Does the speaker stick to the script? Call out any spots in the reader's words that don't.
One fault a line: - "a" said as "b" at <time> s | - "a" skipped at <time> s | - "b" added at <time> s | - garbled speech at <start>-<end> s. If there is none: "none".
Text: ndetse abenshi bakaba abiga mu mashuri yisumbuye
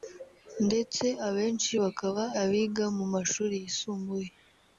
none